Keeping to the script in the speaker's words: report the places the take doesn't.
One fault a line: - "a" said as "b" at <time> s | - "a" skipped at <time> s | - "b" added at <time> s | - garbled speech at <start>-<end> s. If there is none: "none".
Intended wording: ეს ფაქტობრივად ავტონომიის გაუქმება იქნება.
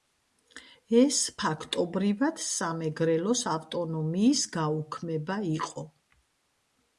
- "სამეგრელოს" added at 2.4 s
- "იქნება" said as "იყო" at 5.6 s